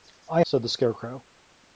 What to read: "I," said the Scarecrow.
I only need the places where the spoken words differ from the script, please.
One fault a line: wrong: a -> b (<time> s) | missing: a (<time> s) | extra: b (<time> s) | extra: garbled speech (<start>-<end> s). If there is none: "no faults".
no faults